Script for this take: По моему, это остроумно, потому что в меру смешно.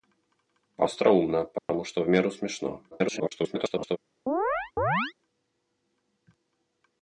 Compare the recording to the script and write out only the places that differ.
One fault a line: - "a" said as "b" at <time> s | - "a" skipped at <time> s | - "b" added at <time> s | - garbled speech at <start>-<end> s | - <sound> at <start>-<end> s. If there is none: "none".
- "моему это" skipped at 0.9 s
- dropout at 1.6-1.7 s
- garbled speech at 2.9-4.0 s
- chirp at 4.3-5.1 s